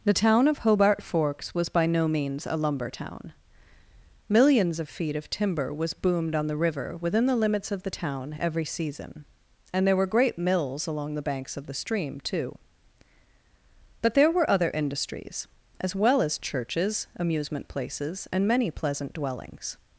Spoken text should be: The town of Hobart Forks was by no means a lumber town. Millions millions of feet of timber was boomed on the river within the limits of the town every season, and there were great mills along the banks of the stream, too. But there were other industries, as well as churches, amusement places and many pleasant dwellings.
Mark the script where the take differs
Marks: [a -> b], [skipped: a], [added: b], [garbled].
The town of Hobart Forks was by no means a lumber town. Millions [skipped: millions] of feet of timber was boomed on the river within the limits of the town every season, and there were great mills along the banks of the stream, too. But there were other industries, as well as churches, amusement places and many pleasant dwellings.